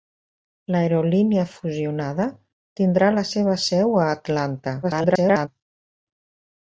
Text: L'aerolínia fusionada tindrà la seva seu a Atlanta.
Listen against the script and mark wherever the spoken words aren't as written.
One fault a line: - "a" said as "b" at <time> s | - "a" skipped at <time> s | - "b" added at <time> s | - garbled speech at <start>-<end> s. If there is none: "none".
- garbled speech at 4.8-5.5 s